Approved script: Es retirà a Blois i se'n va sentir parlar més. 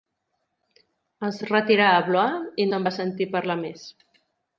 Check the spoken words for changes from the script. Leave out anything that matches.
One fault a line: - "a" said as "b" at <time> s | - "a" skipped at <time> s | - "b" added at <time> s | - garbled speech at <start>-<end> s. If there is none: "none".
none